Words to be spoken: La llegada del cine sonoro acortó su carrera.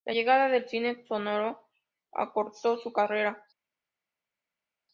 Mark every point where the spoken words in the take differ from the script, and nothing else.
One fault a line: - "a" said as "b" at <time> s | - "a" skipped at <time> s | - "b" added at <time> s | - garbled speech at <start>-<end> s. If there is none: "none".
none